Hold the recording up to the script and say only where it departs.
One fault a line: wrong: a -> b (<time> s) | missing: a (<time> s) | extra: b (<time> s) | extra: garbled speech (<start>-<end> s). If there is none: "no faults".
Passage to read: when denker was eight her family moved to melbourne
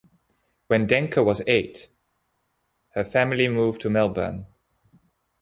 no faults